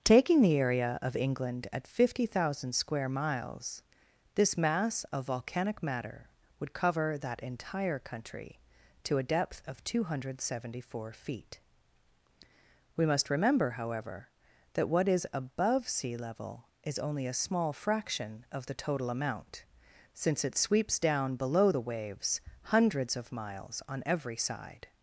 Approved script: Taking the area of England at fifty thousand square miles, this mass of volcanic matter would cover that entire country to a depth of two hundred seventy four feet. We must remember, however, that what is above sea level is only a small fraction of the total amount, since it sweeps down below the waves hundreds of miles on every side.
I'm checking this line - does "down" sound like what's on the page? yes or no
yes